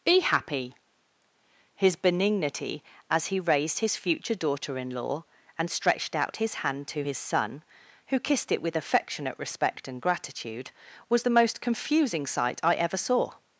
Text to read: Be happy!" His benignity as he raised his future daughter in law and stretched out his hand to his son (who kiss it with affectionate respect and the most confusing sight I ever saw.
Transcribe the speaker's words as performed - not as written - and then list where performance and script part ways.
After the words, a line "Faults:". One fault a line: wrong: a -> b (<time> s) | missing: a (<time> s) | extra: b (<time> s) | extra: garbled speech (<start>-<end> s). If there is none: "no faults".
Be happy!" His benignity as he raised his future daughter in law and stretched out his hand to his son (who kissed it with affectionate respect and gratitude) was the most confusing sight I ever saw.
Faults:
wrong: kiss -> kissed (8.2 s)
extra: gratitude was (10.0 s)